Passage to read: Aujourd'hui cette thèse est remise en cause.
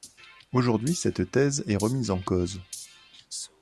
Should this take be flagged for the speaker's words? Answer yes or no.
no